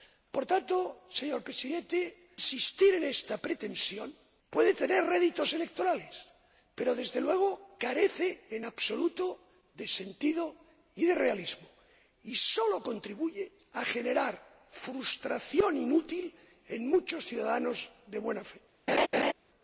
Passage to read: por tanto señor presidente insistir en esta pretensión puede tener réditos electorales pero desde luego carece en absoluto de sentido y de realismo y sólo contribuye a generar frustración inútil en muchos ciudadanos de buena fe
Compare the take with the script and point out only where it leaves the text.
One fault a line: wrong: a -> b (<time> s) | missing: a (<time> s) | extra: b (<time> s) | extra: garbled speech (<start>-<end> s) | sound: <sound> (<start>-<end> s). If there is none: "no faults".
sound: laugh (18.9-19.3 s)